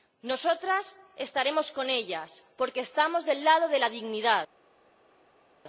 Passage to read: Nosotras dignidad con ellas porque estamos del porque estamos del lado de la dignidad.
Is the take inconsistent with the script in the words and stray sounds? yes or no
yes